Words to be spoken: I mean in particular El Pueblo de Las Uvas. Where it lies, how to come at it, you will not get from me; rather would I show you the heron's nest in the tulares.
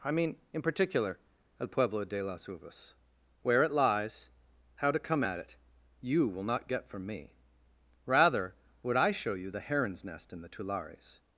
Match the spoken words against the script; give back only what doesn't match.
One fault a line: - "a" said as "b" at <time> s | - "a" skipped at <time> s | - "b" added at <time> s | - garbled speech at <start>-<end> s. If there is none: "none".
none